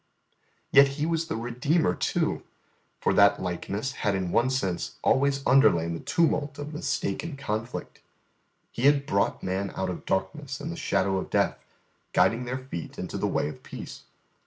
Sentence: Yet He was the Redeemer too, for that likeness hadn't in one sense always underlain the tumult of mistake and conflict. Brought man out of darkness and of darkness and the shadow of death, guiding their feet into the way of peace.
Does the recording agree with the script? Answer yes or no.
no